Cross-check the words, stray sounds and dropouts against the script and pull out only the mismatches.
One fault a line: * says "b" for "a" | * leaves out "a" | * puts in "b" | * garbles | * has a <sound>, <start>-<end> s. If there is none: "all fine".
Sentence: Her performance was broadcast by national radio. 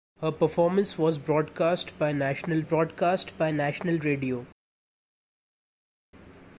* puts in "broadcast by national"